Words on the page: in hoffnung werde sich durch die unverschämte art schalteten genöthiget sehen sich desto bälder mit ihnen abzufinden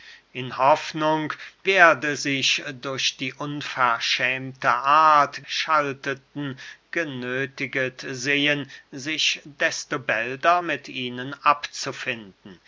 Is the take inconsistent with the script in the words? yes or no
no